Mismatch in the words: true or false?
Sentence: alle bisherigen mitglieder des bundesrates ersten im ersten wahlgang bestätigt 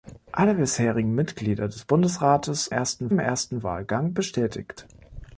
false